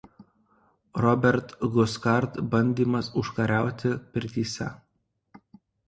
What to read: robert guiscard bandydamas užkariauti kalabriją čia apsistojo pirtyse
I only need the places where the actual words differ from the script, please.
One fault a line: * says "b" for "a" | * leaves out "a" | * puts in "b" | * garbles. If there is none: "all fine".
* leaves out "kalabriją čia apsistojo"